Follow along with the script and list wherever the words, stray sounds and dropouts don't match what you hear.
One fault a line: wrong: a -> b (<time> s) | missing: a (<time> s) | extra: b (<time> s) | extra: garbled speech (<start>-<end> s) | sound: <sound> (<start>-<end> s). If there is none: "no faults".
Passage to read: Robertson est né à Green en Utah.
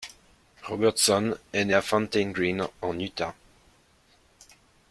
extra: Fountain (1.8 s)